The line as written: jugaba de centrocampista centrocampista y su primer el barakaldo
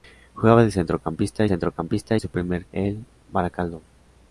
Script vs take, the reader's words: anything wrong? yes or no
no